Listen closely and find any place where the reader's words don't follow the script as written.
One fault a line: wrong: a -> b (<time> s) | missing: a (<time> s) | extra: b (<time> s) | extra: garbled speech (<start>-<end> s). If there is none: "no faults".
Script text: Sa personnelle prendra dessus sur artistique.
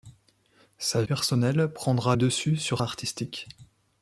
no faults